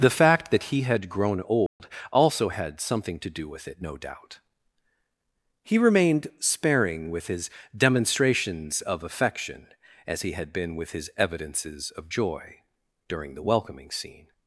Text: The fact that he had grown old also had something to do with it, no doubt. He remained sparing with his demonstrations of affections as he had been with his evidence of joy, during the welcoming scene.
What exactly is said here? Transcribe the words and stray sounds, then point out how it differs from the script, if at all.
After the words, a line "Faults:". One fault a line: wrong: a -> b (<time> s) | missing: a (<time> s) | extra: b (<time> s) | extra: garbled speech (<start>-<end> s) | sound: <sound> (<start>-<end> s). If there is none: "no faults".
The fact that he had grown old also had something to do with it, no doubt. He remained sparing with his demonstrations of affection as he had been with his evidences of joy, during the welcoming scene.
Faults:
sound: dropout (1.7-1.8 s)
wrong: affections -> affection (9.0 s)
wrong: evidence -> evidences (11.2 s)